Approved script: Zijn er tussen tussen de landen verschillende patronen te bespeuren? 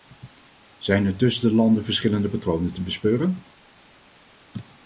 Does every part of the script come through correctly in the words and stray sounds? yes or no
no